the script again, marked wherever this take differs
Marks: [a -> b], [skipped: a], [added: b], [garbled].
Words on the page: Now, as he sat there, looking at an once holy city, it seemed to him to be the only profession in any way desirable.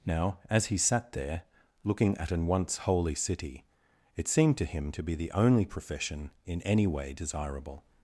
Now, as he sat there, looking at an once holy city, it seemed to him to be the only profession in any way desirable.